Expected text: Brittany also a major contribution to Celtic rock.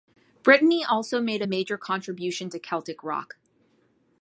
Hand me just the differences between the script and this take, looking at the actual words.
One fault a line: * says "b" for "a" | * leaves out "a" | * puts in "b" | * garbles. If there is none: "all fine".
* puts in "made"